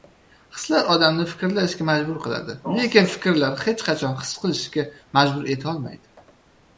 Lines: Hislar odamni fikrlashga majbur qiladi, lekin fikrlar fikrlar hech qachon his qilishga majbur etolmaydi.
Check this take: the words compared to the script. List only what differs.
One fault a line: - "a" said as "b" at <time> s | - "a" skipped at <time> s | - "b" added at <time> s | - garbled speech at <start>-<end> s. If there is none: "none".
- "fikrlar" skipped at 3.6 s